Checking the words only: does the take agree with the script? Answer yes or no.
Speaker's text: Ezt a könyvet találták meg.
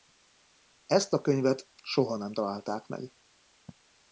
no